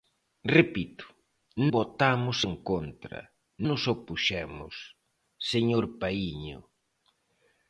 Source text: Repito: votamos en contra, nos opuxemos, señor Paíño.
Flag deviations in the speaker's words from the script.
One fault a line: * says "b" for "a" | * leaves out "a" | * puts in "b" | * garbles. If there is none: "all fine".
all fine